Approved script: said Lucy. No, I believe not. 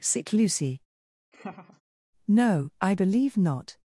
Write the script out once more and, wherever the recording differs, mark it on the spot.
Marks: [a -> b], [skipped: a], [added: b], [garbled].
[said -> sick] Lucy. No, I believe not.